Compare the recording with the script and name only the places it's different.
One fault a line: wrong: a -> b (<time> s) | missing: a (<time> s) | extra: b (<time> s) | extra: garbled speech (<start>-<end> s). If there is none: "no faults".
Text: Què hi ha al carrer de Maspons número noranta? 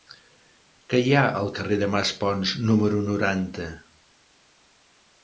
no faults